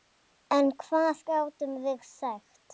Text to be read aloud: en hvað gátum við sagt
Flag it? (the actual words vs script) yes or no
no